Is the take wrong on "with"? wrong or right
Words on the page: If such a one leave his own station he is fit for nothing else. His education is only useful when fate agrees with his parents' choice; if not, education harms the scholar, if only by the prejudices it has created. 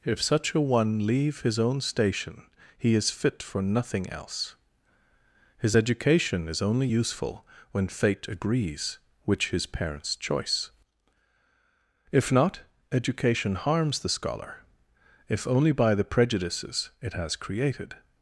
wrong